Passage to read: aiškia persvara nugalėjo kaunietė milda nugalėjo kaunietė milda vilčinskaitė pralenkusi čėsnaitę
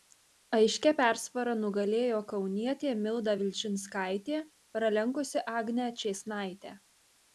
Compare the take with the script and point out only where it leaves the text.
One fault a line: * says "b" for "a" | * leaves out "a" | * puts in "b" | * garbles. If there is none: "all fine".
* leaves out "nugalėjo kaunietė milda"
* puts in "agnę"